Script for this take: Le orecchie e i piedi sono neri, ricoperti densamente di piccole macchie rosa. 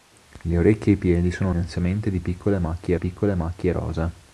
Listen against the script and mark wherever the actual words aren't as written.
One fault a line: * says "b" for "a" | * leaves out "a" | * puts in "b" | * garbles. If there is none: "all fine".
* says "densamente di piccole macchie" for "neri ricoperti densamente di"